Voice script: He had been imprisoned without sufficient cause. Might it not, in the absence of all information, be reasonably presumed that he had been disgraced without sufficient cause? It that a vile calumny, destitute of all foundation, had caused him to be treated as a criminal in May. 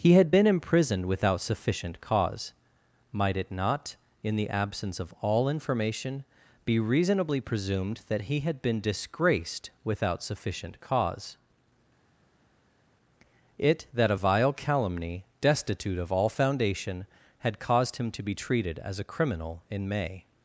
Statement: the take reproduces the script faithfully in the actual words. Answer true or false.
true